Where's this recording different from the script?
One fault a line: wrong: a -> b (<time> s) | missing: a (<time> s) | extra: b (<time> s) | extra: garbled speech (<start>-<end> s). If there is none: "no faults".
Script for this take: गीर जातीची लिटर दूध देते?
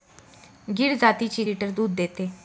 no faults